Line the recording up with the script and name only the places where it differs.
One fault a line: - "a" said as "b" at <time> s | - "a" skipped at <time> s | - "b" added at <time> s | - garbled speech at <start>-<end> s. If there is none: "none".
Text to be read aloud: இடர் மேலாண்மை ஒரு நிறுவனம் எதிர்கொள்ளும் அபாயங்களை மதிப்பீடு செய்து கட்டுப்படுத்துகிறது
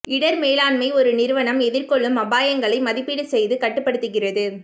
none